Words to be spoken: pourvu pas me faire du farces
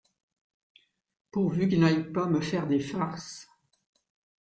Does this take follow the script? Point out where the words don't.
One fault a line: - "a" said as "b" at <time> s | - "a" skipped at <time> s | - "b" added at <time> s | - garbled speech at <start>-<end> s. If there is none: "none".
- "qu'il n'aille" added at 1.7 s
- "du" said as "des" at 2.7 s